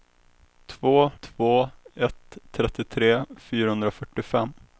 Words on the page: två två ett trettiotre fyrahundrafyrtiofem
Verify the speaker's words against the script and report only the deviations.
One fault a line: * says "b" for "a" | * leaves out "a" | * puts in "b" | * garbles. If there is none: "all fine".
all fine